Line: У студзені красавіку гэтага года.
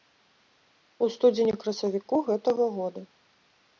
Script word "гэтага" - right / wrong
right